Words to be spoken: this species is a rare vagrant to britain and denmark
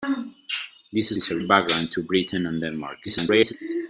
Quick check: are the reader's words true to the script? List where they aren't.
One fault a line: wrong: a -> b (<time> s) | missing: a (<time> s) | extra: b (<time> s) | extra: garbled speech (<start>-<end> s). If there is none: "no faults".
missing: species (1.1 s)
missing: rare (1.4 s)
extra: garbled speech (3.1-3.5 s)